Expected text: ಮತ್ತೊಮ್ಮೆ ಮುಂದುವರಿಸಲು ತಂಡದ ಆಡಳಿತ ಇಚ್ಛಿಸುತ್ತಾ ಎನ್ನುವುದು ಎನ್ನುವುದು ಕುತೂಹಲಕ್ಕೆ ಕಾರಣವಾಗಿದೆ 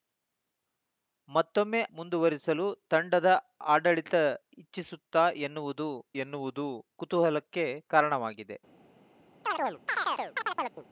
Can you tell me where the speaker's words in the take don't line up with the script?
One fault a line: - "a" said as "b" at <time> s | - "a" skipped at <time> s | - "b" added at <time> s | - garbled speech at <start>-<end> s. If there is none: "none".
none